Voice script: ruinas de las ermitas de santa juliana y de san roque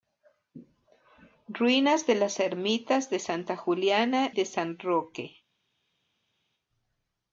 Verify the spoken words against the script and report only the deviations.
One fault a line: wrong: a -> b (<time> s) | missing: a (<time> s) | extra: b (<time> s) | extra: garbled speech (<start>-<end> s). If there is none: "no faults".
missing: y (4.3 s)